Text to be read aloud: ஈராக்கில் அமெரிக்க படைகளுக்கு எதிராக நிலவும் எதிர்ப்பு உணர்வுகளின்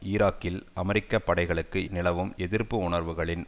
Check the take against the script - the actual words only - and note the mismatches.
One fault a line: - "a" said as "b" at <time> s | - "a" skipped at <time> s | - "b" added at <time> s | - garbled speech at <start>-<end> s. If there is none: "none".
- "எதிராக" skipped at 1.9 s